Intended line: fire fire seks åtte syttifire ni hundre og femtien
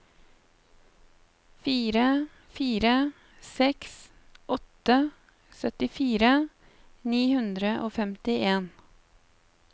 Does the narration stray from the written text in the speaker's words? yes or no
no